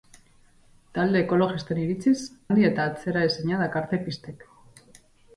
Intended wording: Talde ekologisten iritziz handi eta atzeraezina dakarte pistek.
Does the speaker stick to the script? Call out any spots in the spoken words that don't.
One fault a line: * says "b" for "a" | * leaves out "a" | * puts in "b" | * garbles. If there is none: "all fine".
all fine